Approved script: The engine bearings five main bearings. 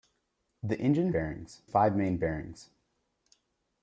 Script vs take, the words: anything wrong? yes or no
no